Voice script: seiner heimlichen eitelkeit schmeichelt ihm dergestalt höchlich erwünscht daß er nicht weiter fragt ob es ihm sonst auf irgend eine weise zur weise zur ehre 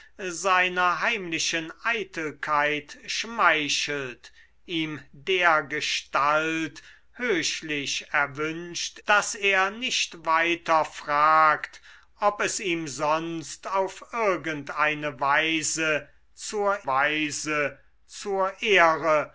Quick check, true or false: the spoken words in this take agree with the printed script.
true